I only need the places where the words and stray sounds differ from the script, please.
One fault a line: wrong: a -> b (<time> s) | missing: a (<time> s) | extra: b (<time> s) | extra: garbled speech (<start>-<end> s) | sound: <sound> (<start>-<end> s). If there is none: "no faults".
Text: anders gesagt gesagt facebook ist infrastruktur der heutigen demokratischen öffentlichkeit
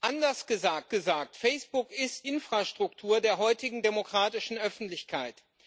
no faults